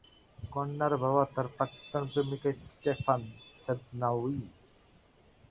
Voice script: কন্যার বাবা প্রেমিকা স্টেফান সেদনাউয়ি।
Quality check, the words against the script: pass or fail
fail